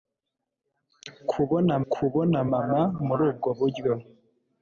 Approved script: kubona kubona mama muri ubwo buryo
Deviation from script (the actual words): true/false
false